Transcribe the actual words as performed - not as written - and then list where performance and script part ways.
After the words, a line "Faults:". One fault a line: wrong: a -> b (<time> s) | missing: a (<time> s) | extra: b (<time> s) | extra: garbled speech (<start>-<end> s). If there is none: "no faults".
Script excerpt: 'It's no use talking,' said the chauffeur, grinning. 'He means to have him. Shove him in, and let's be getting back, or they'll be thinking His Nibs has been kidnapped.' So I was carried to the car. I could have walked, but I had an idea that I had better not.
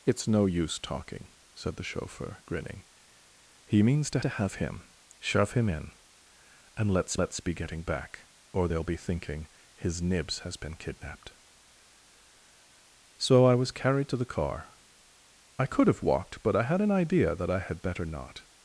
'It's no use talking,' said the chauffeur, grinning. 'He means to to have him. Shove him in, and let's let's be getting back, or they'll be thinking His Nibs has been kidnapped.' So I was carried to the car. I could have walked, but I had an idea that I had better not.
Faults:
extra: to (4.2 s)
extra: let's (7.2 s)